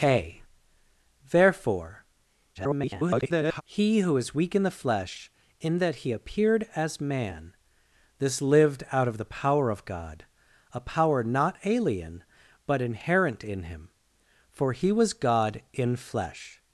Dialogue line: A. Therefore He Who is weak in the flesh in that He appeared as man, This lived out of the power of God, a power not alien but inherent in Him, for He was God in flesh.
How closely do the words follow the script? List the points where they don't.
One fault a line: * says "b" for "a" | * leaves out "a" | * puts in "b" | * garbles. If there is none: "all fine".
* garbles